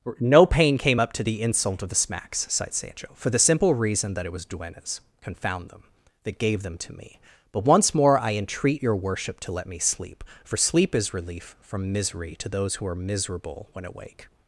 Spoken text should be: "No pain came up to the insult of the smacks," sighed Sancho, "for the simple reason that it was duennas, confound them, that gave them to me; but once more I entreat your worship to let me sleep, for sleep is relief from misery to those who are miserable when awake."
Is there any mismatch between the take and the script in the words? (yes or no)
no